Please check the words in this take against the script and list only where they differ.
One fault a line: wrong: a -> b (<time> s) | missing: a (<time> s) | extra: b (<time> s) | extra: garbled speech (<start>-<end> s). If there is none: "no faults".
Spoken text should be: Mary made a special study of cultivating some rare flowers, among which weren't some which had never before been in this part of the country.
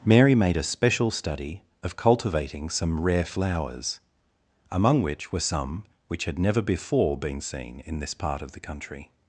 wrong: weren't -> were (5.3 s)
extra: seen (7.4 s)